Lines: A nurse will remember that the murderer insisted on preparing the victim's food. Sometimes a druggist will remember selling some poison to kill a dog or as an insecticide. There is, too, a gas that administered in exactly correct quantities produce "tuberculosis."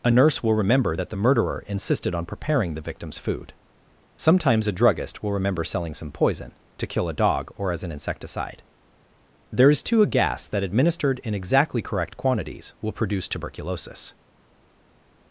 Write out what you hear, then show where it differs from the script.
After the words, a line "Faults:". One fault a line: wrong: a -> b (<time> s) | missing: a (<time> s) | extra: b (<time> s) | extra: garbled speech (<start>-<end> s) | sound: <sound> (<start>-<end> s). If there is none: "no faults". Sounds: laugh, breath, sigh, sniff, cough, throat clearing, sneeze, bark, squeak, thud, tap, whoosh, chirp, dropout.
A nurse will remember that the murderer insisted on preparing the victim's food. Sometimes a druggist will remember selling some poison to kill a dog or as an insecticide. There is, too, a gas that administered in exactly correct quantities will produce "tuberculosis."
Faults:
extra: will (12.8 s)